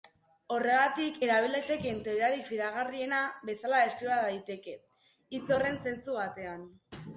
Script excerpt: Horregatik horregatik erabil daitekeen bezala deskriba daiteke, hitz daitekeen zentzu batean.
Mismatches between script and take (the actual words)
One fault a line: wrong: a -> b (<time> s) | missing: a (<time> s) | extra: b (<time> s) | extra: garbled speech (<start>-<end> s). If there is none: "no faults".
missing: horregatik (1.2 s)
extra: teoriarik fidagarriena (2.0 s)
wrong: daitekeen -> horren (5.6 s)